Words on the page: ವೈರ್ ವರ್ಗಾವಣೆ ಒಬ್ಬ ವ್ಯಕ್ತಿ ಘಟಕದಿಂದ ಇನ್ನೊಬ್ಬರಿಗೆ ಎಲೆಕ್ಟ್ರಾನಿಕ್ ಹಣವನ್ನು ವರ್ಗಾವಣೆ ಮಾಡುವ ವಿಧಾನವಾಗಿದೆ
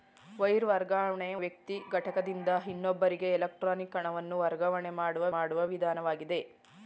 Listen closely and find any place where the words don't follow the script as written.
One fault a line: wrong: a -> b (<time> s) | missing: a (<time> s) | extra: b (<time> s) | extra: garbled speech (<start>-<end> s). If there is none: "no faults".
missing: ಒಬ್ಬ (1.3 s)
extra: ಮಾಡುವ (5.4 s)